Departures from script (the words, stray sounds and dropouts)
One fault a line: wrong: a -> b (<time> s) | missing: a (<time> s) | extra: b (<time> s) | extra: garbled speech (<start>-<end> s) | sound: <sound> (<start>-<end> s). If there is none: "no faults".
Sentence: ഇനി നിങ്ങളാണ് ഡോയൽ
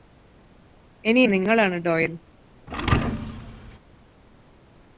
sound: thud (2.7-3.8 s)